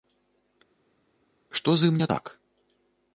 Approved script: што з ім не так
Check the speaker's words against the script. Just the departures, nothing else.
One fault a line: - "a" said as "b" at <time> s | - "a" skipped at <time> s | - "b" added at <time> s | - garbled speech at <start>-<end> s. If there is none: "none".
none